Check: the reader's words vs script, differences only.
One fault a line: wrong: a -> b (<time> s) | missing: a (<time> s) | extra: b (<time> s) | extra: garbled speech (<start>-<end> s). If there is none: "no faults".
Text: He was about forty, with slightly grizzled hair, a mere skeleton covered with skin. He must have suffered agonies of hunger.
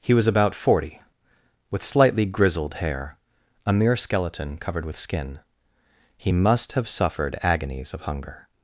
no faults